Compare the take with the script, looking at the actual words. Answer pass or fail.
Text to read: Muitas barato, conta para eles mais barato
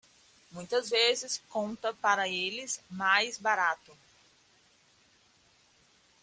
fail